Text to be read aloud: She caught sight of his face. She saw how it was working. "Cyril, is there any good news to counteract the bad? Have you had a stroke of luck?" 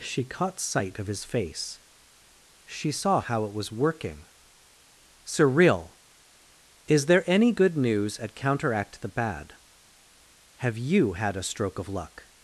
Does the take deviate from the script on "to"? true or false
true